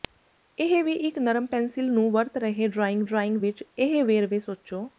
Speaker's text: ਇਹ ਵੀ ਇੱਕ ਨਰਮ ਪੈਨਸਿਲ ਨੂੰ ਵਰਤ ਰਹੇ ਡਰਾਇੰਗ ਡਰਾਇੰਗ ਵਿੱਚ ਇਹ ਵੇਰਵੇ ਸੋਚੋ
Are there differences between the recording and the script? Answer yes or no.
no